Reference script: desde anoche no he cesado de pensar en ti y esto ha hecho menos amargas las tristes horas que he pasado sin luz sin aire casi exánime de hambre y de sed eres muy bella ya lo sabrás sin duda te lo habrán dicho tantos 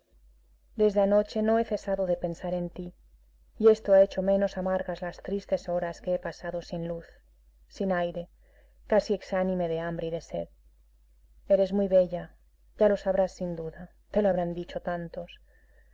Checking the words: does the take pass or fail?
pass